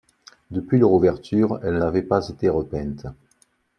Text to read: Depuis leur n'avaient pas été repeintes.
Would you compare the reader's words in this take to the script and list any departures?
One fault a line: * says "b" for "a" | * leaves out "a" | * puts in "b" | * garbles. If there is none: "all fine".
* puts in "ouverture elles"